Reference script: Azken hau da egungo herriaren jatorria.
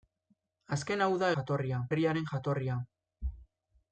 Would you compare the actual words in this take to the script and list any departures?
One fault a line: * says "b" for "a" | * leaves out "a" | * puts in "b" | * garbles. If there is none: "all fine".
* says "jatorria" for "egungo"